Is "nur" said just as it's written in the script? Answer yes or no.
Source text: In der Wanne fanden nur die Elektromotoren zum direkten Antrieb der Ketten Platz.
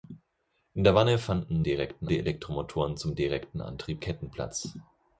no